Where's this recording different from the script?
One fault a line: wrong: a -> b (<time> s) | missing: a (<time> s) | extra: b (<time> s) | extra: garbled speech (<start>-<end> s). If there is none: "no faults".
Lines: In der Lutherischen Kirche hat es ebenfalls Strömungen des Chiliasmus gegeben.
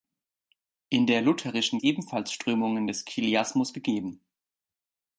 missing: Kirche hat es (1.8 s)